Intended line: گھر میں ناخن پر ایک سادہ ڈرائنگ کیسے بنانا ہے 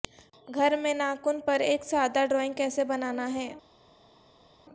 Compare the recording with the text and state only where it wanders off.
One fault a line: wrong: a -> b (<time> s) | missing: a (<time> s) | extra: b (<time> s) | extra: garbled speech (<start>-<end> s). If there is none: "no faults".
no faults